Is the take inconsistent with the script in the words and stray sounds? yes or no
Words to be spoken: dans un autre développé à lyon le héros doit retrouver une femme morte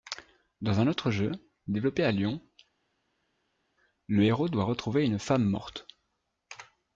yes